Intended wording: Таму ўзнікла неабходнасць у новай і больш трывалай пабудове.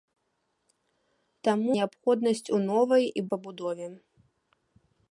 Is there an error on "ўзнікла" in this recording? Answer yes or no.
yes